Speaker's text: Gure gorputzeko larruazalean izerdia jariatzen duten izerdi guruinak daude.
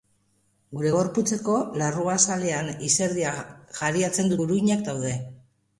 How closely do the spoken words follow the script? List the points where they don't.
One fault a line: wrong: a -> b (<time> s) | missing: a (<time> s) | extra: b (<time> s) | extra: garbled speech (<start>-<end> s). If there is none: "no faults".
missing: duten izerdi (4.3 s)